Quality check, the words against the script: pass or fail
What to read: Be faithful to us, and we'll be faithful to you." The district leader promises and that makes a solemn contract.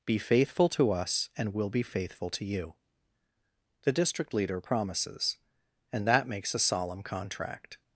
pass